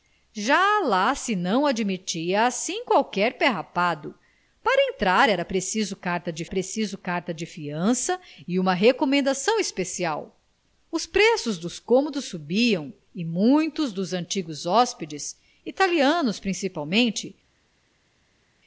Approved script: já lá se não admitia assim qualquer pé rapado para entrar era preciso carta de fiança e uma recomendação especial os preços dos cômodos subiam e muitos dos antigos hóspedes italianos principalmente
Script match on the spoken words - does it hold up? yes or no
no